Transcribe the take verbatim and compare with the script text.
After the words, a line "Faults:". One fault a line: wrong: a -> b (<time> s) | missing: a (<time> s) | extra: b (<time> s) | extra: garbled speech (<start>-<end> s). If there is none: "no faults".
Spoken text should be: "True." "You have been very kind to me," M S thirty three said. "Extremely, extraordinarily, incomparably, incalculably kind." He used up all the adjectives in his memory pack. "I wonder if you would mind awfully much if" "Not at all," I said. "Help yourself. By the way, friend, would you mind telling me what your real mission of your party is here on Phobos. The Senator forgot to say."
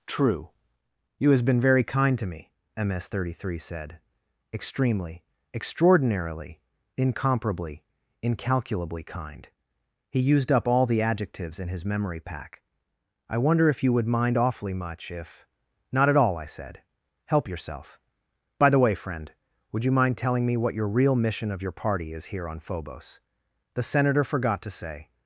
"True." "You has been very kind to me," M S thirty three said. "Extremely, extraordinarily, incomparably, incalculably kind." He used up all the adjectives in his memory pack. "I wonder if you would mind awfully much if" "Not at all," I said. "Help yourself. By the way, friend, would you mind telling me what your real mission of your party is here on Phobos. The Senator forgot to say."
Faults:
wrong: have -> has (1.3 s)